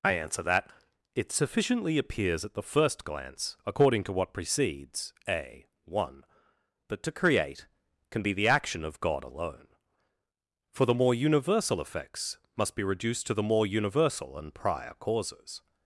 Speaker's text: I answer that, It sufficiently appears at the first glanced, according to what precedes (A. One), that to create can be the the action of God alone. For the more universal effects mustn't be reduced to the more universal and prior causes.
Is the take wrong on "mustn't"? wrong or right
wrong